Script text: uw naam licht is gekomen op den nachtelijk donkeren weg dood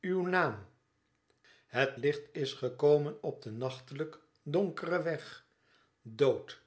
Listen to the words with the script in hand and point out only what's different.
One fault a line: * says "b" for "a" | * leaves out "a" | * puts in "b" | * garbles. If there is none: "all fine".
* puts in "het"